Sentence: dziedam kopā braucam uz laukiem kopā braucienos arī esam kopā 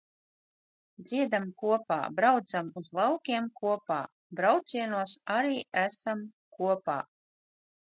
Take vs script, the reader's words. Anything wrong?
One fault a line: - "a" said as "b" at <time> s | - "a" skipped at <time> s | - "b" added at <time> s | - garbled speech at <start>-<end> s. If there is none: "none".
none